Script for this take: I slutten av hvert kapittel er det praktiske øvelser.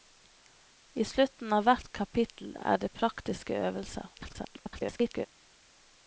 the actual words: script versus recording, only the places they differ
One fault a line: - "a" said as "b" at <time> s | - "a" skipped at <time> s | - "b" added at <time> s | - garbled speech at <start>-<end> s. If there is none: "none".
- garbled speech at 4.1-5.3 s